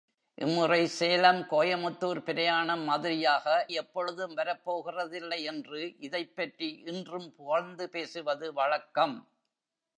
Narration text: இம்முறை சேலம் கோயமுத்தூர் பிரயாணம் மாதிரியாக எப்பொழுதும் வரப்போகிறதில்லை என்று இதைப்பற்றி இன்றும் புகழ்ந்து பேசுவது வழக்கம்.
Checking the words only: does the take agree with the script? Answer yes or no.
yes